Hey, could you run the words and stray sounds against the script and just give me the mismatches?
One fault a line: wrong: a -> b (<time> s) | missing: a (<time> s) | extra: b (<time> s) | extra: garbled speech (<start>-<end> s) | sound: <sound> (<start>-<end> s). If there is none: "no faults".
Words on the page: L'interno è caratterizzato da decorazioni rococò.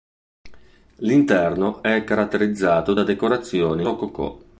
no faults